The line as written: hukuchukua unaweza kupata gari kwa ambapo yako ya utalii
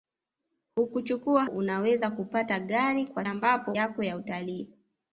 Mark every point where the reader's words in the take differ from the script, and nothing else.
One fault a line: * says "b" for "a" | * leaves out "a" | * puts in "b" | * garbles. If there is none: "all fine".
all fine